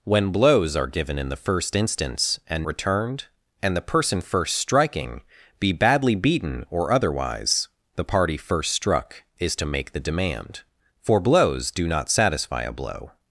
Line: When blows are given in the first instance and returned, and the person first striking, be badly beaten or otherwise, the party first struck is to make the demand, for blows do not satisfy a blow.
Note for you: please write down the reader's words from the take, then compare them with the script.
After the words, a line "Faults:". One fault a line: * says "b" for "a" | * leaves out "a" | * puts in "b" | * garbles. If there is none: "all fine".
When blows are given in the first instance and returned, and the person first striking, be badly beaten or otherwise, the party first struck is to make the demand, for blows do not satisfy a blow.
Faults:
all fine